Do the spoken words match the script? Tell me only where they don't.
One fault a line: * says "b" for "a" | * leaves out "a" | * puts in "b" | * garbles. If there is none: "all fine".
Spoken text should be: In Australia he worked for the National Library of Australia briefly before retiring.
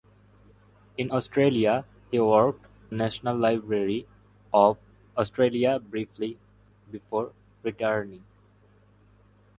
* leaves out "for the"